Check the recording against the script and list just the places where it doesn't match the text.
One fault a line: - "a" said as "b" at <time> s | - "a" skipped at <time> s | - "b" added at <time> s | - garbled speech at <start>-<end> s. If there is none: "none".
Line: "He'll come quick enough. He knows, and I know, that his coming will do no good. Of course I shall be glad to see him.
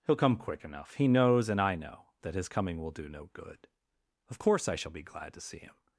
none